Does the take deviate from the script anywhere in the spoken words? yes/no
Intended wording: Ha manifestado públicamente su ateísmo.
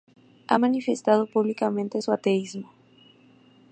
no